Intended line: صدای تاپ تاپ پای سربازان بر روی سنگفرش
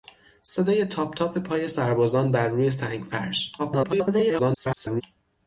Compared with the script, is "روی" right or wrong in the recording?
right